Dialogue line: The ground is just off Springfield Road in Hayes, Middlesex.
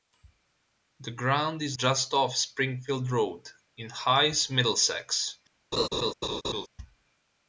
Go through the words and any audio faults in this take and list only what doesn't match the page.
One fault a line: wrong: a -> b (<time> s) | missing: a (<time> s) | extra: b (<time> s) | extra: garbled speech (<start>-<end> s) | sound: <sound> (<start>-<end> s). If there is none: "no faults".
sound: laugh (5.7-6.7 s)